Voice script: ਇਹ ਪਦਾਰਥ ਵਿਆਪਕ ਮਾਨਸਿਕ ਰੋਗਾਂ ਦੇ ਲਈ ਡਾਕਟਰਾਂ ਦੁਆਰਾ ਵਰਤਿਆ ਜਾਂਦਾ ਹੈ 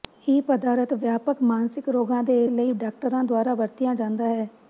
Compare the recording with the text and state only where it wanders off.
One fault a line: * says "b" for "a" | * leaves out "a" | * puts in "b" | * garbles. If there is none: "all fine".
all fine